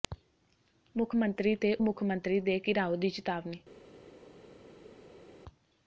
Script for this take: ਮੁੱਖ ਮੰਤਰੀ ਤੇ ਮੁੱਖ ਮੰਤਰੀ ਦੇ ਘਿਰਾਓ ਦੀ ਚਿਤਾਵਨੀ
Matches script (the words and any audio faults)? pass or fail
pass